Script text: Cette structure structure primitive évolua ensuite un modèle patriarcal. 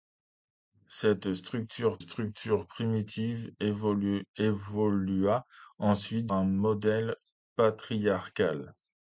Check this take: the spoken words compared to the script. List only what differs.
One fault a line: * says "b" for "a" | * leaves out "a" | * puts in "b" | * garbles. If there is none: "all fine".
all fine